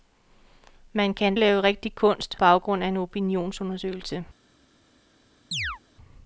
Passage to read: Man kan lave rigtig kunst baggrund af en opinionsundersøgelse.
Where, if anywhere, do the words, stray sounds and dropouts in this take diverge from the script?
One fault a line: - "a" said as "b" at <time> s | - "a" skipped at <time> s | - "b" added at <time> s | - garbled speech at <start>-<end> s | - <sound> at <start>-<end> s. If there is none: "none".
- chirp at 5.5-5.8 s